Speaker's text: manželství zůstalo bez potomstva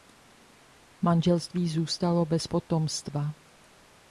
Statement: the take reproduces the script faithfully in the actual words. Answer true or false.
true